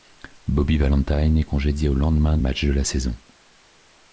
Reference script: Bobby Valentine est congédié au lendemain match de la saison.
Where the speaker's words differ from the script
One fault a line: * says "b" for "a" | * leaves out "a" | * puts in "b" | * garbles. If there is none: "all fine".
all fine